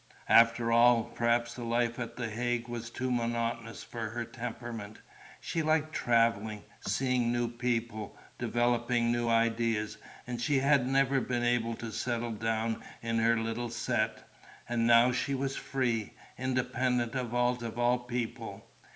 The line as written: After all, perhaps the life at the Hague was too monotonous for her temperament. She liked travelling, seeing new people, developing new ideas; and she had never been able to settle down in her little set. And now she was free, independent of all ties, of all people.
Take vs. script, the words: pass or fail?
fail